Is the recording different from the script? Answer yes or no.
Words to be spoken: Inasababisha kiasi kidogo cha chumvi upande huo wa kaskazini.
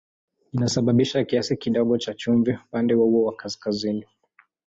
no